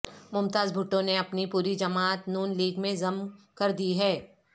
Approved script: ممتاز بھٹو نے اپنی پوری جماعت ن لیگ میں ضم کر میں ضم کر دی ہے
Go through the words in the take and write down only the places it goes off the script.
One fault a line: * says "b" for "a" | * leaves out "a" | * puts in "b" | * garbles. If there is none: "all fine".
* leaves out "میں ضم کر"